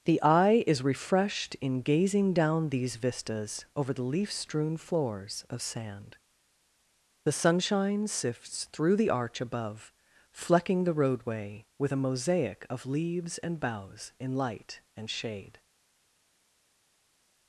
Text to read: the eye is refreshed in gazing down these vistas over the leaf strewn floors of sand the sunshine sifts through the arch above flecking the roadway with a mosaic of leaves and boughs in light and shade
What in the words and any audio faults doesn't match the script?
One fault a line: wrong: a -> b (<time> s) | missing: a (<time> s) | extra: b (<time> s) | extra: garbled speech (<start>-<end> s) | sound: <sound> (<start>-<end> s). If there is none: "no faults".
no faults